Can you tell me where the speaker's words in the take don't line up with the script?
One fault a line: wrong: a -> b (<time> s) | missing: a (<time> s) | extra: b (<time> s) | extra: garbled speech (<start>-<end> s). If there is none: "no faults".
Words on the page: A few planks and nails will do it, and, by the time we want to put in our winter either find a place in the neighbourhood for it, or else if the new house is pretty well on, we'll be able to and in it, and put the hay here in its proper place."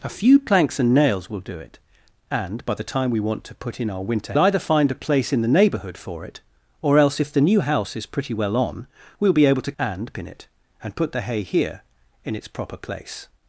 no faults